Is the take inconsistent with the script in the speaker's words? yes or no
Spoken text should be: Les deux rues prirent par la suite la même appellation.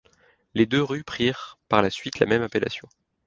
no